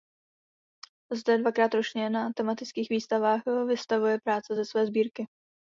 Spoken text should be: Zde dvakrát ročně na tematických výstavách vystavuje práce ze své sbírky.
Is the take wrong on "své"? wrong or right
right